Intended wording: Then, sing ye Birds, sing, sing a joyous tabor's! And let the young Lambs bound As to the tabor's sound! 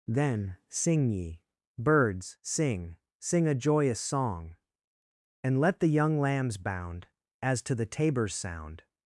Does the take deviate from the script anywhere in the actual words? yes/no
yes